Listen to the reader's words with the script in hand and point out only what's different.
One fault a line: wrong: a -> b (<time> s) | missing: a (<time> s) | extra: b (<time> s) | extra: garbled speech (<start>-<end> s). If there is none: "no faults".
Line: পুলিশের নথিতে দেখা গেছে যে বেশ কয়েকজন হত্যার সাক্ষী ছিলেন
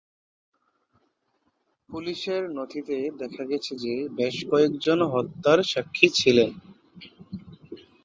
no faults